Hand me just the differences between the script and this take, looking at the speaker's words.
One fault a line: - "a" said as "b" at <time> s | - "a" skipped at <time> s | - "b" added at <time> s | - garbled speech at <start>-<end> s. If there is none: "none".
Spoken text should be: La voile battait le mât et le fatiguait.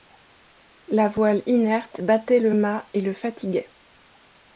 - "inerte" added at 1.4 s